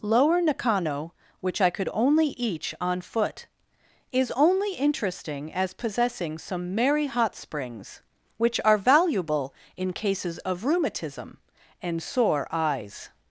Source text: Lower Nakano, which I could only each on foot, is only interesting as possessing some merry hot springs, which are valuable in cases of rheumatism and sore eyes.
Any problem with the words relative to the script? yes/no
no